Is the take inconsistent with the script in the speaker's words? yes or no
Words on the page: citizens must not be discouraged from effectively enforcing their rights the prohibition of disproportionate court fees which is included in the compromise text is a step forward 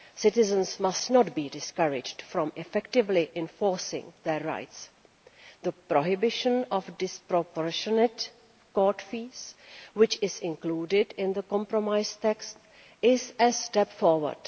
no